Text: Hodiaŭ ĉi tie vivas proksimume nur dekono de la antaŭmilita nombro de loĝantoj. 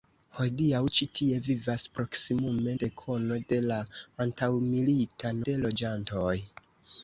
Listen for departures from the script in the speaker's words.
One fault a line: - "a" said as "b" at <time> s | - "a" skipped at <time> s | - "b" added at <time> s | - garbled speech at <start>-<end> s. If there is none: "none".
- "nur" skipped at 2.8 s
- "nombro" skipped at 5.4 s